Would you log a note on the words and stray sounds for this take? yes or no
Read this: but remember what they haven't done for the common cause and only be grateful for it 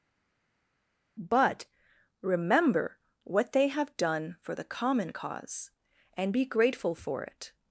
yes